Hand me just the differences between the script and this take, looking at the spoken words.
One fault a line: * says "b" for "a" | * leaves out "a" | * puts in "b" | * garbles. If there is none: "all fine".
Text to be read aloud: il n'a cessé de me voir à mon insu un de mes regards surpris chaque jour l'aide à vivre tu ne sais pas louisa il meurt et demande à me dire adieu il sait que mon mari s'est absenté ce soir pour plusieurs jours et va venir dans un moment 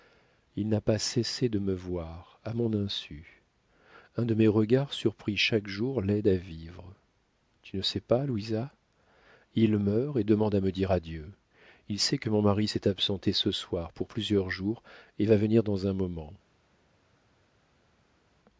* puts in "pas"